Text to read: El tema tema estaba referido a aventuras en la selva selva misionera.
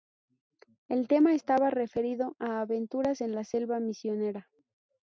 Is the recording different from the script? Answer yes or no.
yes